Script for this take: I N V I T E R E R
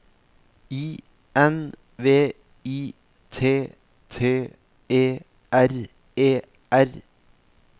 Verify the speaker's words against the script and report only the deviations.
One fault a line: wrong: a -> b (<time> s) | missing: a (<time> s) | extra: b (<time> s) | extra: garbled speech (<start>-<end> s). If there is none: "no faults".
extra: T (4.1 s)